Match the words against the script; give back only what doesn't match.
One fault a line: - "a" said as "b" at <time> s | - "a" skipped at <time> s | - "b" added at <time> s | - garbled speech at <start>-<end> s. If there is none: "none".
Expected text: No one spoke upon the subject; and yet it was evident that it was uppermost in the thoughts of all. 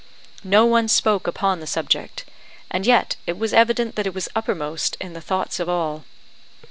none